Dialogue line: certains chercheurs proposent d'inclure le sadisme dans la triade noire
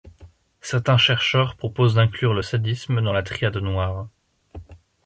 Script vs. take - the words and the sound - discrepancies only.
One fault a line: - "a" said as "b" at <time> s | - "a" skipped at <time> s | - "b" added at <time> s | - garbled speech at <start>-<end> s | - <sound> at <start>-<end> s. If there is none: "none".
none